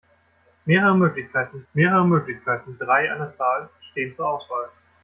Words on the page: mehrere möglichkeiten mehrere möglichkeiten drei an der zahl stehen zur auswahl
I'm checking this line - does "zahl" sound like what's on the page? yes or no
yes